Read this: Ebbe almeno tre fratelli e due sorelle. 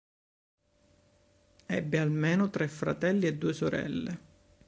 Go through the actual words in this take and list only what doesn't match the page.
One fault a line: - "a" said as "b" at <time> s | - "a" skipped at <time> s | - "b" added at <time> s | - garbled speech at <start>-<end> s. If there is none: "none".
none